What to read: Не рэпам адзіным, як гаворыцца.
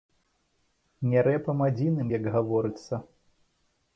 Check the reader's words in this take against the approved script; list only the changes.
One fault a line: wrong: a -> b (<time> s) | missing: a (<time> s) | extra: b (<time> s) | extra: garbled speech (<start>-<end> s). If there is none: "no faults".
no faults